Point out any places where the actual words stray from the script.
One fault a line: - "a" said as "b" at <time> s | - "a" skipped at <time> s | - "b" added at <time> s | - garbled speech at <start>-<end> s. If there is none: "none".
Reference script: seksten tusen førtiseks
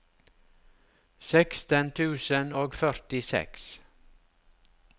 - "og" added at 2.6 s